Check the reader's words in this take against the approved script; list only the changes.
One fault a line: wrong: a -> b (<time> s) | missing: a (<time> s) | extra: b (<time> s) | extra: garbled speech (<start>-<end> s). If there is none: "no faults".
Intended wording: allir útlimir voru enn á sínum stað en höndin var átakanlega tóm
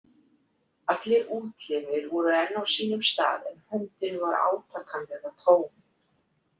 no faults